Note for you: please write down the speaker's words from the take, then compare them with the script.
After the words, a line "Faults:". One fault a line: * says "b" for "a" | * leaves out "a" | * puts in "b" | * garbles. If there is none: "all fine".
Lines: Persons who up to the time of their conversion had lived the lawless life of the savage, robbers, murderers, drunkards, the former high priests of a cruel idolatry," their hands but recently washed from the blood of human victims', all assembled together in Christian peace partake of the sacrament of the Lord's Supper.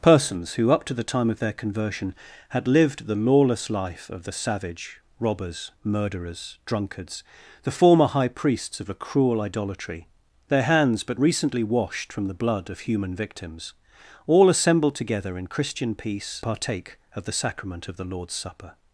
Persons who up to the time of their conversion had lived the lawless life of the savage, robbers, murderers, drunkards, the former high priests of a cruel idolatry," their hands but recently washed from the blood of human victims', all assembled together in Christian peace partake of the sacrament of the Lord's Supper.
Faults:
all fine